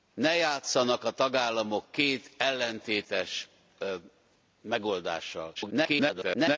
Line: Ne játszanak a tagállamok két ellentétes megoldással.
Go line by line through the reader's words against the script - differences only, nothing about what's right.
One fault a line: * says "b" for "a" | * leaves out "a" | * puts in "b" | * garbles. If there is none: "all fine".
* garbles